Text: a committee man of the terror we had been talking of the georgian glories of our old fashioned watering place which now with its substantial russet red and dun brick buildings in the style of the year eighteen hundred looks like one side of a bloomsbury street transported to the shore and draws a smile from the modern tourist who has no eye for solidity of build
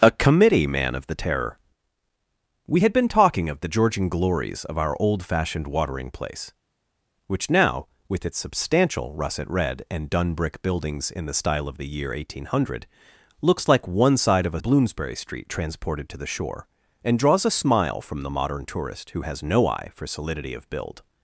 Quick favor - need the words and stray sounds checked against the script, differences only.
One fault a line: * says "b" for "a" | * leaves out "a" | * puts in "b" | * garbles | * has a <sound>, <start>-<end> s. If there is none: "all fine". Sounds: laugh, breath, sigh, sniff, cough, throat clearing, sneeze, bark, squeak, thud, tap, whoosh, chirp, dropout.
all fine